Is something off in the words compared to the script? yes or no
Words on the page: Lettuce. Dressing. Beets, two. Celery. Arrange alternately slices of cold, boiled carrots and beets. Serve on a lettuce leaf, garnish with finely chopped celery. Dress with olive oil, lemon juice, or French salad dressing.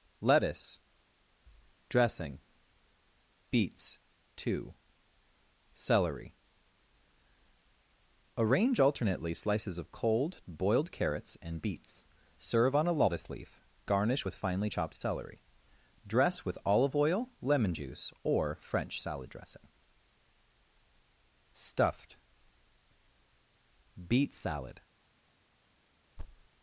yes